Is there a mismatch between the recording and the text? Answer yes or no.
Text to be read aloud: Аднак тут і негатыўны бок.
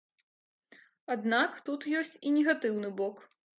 yes